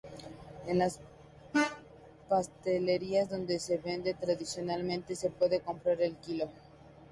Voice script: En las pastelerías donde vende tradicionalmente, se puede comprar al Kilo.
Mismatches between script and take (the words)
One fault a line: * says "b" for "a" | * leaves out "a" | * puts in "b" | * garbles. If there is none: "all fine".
* puts in "se"